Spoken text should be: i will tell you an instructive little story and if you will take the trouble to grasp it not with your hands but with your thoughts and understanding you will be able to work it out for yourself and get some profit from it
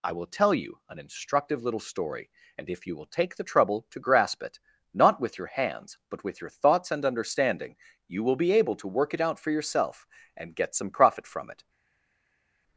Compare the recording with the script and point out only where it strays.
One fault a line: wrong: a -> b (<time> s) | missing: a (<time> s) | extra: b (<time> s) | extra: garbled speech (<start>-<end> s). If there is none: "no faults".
no faults